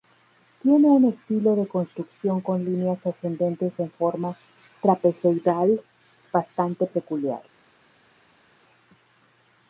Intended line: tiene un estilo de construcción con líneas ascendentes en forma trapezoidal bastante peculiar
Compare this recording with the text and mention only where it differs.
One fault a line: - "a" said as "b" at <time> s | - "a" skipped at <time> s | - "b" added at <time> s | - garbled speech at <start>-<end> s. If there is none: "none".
none